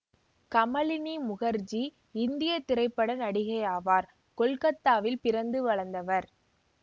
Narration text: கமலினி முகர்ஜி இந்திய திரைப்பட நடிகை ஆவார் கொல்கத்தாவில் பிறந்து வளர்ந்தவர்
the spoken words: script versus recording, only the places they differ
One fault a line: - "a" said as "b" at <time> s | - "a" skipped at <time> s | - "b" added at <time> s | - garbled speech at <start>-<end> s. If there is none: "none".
none